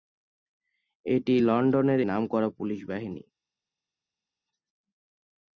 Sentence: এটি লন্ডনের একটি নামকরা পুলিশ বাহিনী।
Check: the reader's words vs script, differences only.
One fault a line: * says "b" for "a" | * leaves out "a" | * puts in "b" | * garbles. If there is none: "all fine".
* leaves out "একটি"